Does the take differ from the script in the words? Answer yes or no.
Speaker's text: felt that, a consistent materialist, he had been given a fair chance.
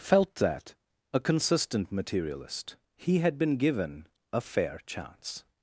no